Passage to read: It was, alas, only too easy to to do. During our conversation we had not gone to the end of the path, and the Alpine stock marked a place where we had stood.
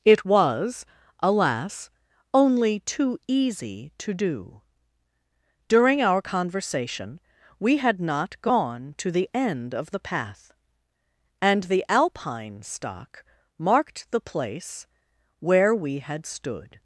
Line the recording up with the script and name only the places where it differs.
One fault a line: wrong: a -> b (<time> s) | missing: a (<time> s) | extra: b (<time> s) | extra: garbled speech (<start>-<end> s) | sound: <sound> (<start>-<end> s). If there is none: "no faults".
missing: to (4.1 s)
wrong: a -> the (14.1 s)